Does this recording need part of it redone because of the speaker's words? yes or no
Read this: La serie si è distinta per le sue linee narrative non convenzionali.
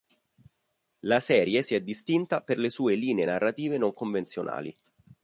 no